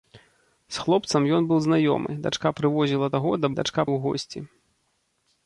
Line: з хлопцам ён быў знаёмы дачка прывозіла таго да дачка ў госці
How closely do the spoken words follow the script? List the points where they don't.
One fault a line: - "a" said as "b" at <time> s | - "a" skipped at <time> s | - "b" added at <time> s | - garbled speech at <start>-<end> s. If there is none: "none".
none